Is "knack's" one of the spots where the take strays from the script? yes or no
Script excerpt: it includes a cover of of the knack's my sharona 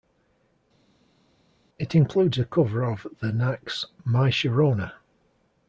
no